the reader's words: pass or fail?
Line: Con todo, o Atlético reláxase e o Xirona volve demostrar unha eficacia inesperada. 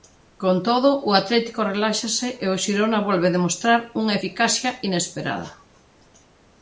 pass